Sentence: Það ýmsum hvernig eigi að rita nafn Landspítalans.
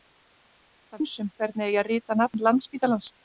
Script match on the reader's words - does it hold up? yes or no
yes